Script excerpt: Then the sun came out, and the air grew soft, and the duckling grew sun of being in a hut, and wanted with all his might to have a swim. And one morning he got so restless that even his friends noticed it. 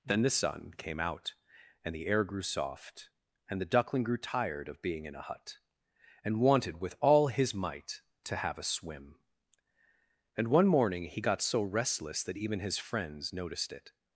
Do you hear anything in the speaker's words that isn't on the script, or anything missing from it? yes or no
yes